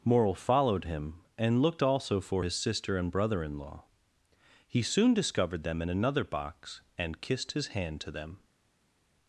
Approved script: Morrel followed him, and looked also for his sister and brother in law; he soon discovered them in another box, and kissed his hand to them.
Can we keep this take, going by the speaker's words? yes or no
yes